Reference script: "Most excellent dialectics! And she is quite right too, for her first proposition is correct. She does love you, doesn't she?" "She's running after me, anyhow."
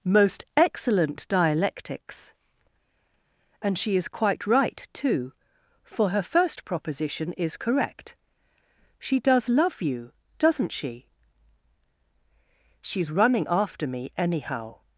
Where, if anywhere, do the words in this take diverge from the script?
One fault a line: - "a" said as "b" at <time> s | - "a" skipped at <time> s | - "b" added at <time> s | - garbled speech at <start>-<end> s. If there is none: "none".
none